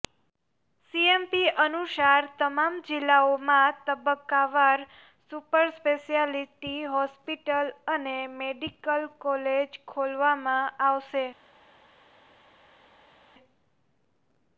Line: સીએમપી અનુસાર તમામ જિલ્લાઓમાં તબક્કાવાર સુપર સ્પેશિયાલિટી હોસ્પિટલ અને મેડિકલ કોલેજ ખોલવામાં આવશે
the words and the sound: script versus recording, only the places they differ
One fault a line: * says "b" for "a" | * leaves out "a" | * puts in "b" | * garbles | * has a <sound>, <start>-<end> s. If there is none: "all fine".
all fine